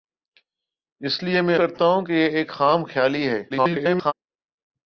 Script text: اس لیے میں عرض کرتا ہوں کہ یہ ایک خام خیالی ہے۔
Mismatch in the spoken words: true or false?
true